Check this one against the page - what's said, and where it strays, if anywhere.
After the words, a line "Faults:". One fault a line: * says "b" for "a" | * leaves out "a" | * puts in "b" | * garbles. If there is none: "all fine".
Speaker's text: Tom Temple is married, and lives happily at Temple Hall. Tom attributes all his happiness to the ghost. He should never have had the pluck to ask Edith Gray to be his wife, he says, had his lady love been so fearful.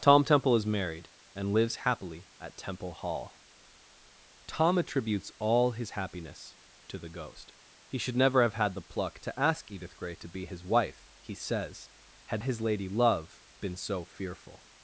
Tom Temple is married, and lives happily at Temple Hall. Tom attributes all his happiness to the ghost. He should never have had the pluck to ask Edith Gray to be his wife, he says, had his lady love been so fearful.
Faults:
all fine